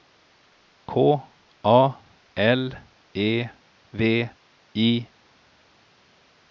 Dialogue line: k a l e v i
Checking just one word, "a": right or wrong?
right